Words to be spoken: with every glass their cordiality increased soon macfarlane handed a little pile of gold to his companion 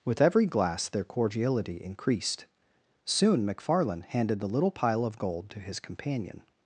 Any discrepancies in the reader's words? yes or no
yes